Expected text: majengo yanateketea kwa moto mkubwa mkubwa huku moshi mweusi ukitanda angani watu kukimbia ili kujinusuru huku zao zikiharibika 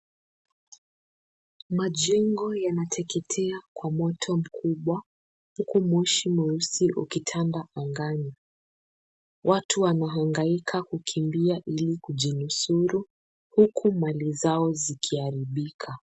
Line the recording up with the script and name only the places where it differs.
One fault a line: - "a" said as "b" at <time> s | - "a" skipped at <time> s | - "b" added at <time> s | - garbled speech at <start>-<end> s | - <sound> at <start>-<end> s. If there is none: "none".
- "mkubwa" skipped at 5.0 s
- "wanahangaika" added at 9.8 s
- "mali" added at 13.9 s